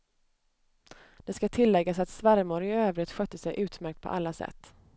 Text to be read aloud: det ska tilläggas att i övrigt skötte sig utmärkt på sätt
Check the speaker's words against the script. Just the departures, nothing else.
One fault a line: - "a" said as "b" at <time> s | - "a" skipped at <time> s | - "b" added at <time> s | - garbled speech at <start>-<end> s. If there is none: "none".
- "svärmor" added at 2.1 s
- "alla" added at 4.1 s